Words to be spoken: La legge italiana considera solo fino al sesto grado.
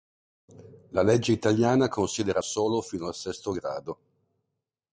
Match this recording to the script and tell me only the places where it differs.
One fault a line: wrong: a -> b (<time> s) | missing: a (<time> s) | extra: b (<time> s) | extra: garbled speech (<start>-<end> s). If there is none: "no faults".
no faults